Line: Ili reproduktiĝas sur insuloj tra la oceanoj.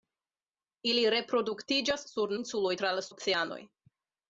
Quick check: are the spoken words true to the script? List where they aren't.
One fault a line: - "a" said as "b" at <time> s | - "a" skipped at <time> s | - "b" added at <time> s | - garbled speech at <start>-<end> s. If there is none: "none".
none